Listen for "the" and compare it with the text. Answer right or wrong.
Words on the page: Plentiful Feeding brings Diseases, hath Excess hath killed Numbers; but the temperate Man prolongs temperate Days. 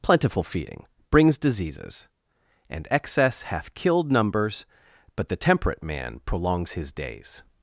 right